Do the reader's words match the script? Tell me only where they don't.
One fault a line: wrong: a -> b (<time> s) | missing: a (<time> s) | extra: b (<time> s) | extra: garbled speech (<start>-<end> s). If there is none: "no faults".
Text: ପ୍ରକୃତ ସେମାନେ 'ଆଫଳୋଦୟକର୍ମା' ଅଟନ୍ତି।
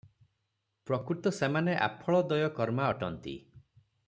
no faults